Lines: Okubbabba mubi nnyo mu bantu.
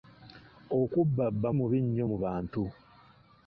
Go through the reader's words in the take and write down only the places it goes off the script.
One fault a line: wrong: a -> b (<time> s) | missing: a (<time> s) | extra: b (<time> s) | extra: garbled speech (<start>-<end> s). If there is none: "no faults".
no faults